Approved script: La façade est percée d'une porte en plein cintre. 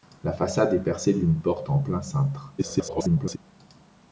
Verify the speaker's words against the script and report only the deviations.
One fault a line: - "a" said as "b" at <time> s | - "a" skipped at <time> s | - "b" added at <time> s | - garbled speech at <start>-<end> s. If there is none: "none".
- garbled speech at 2.6-3.4 s